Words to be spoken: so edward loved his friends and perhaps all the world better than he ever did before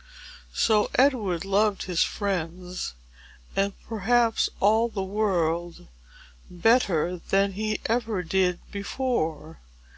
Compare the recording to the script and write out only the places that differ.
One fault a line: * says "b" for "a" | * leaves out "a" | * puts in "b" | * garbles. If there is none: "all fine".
all fine